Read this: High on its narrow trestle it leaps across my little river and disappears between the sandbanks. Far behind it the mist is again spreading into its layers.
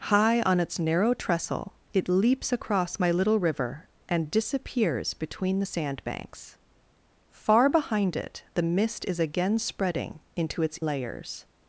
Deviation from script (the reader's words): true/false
false